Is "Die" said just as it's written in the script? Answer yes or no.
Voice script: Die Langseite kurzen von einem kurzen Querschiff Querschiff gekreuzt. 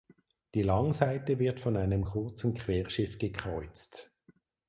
yes